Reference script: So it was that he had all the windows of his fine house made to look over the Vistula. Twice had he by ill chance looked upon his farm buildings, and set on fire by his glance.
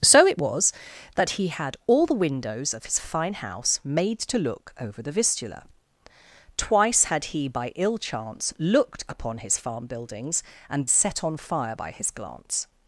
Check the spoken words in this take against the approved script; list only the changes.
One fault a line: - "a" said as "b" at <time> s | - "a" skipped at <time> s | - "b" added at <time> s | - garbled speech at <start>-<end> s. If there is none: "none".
none